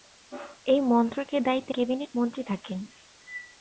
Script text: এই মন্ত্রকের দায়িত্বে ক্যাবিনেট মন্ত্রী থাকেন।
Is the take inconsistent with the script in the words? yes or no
no